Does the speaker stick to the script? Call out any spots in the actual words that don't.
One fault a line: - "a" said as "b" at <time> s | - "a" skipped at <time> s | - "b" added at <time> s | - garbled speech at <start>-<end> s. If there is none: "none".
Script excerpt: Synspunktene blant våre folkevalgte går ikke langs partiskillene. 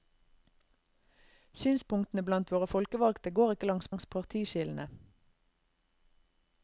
- "langs" added at 3.9 s